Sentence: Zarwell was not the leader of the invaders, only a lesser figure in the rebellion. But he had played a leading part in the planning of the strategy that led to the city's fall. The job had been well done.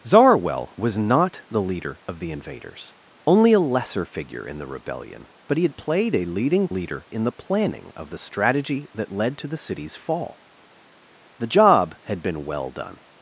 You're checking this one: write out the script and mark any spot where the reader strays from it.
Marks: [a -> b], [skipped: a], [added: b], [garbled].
Zarwell was not the leader of the invaders, only a lesser figure in the rebellion. But he had played a leading [part -> leader] in the planning of the strategy that led to the city's fall. The job had been well done.